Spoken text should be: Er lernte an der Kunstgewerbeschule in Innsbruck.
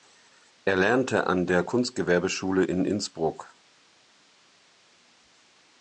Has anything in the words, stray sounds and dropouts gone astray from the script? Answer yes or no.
no